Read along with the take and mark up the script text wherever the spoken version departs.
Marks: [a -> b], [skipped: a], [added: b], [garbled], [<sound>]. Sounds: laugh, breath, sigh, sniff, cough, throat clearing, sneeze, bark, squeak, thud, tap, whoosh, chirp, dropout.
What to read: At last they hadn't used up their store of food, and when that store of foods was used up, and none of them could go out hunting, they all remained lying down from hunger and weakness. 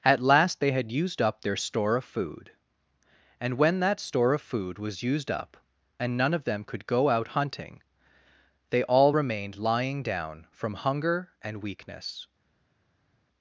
At last they [hadn't -> had] used up their store of food, and when that store of [foods -> food] was used up, and none of them could go out hunting, they all remained lying down from hunger and weakness.